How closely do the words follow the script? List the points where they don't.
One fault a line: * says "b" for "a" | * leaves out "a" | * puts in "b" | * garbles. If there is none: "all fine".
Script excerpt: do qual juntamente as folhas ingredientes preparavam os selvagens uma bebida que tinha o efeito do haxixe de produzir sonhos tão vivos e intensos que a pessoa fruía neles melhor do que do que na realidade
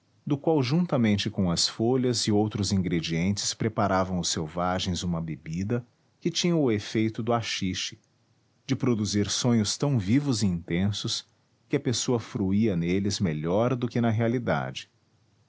* puts in "com"
* puts in "e outros"
* leaves out "do que"